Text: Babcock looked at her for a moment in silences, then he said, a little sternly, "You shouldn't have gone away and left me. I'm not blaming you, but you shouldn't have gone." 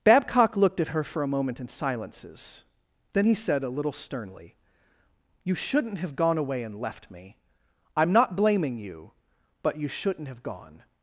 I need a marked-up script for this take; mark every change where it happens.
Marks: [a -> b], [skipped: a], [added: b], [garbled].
Babcock looked at her for a moment in silences, then he said, a little sternly, "You shouldn't have gone away and left me. I'm not blaming you, but you shouldn't have gone."